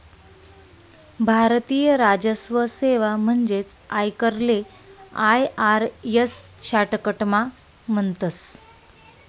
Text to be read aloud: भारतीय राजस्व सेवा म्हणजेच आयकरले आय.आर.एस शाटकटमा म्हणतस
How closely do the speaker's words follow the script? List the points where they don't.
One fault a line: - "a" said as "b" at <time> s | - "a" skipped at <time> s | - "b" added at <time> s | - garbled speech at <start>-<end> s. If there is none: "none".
none